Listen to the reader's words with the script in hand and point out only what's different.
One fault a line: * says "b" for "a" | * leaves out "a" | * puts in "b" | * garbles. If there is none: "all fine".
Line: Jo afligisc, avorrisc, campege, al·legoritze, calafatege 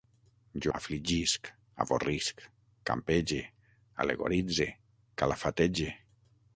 all fine